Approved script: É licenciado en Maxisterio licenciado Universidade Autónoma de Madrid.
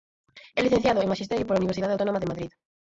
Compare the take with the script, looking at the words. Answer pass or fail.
fail